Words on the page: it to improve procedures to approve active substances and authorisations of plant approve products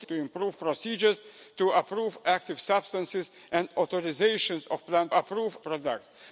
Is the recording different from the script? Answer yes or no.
no